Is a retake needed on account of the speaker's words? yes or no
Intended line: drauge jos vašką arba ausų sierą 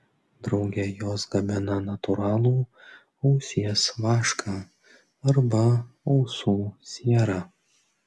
yes